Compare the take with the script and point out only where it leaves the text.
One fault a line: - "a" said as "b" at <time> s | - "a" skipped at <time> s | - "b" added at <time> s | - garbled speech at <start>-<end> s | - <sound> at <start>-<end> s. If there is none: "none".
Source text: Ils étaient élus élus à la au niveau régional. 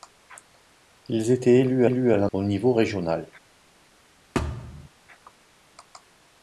- thud at 4.3-4.9 s